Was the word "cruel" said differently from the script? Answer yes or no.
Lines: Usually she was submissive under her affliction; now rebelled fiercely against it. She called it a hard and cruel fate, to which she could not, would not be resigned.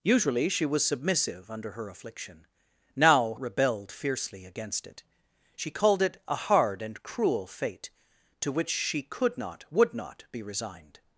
no